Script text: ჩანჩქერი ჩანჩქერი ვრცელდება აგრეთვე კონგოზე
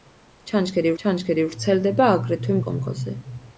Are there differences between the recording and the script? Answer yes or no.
no